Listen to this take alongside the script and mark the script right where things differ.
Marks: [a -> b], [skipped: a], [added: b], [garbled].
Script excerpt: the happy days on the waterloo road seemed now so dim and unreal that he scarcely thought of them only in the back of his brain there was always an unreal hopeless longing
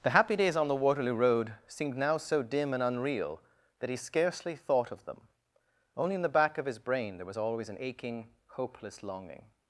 the happy days on the waterloo road seemed now so dim and unreal that he scarcely thought of them only in the back of his brain there was always an [unreal -> aching] hopeless longing